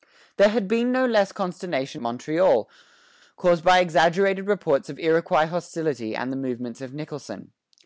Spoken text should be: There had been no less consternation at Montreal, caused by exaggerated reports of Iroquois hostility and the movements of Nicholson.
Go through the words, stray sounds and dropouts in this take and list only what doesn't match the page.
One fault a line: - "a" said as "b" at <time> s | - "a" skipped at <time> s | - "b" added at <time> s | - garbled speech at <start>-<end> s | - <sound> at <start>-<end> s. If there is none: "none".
- "at" skipped at 2.0 s